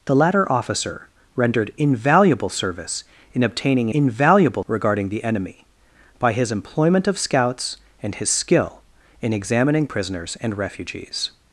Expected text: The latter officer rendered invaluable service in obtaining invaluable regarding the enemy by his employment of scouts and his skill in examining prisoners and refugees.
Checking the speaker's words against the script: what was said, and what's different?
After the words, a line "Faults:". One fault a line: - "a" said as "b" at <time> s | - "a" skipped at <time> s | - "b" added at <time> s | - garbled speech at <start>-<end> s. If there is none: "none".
The latter officer rendered invaluable service in obtaining invaluable regarding the enemy by his employment of scouts and his skill in examining prisoners and refugees.
Faults:
none